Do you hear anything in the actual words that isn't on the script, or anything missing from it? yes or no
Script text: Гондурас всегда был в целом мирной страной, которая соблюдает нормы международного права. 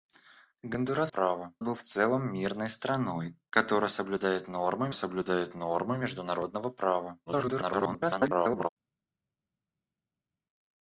yes